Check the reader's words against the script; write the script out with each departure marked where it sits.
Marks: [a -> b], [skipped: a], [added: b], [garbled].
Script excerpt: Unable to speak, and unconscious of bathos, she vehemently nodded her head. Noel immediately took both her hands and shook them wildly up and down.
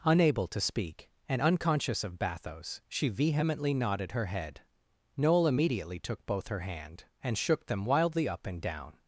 Unable to speak, and unconscious of bathos, she vehemently nodded her head. Noel immediately took both her [hands -> hand] and shook them wildly up and down.